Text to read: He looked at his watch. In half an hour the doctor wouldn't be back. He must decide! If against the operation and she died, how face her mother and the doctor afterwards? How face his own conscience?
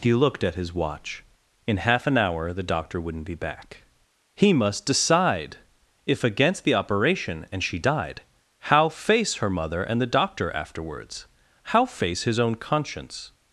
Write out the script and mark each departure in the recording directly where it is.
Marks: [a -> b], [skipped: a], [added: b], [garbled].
He looked at his watch. In half an hour the doctor wouldn't be back. He must decide! If against the operation and she died, how face her mother and the doctor afterwards? How face his own conscience?